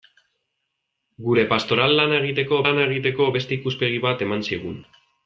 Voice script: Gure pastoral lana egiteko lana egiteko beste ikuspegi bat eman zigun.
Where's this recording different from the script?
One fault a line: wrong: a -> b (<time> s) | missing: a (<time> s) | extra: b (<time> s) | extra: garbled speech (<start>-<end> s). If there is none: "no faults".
no faults